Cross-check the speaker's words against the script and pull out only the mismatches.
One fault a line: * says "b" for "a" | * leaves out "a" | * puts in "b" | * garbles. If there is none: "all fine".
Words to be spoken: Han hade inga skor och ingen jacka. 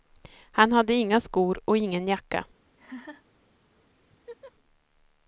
all fine